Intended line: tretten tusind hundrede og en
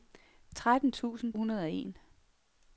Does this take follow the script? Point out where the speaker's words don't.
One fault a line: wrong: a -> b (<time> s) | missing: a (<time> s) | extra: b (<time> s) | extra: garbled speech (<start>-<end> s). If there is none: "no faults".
no faults